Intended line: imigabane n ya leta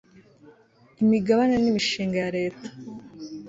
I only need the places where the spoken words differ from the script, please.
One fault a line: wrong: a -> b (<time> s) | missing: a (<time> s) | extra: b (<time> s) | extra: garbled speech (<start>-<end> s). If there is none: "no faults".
extra: imishinga (1.7 s)